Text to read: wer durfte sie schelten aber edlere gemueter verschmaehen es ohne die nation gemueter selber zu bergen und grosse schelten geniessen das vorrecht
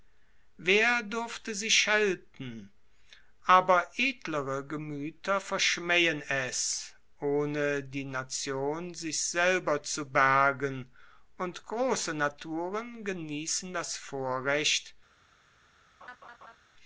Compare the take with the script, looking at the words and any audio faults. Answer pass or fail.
fail